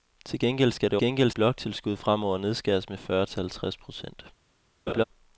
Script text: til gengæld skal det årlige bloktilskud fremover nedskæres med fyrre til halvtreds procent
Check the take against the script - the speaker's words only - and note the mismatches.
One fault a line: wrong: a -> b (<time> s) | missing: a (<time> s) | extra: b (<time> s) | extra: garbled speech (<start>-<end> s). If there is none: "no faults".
wrong: årlige -> gengæld (1.0 s)